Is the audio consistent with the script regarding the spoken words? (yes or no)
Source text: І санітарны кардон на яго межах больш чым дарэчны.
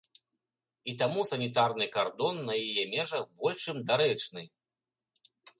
no